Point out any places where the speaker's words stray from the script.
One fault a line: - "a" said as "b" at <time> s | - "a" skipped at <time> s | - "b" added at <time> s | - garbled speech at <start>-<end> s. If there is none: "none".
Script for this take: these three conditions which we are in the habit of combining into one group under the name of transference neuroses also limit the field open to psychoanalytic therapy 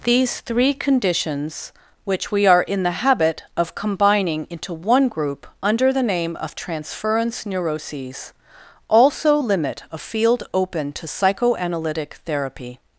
- "the" said as "a" at 9.9 s